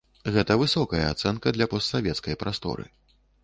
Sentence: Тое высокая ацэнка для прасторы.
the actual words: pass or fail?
fail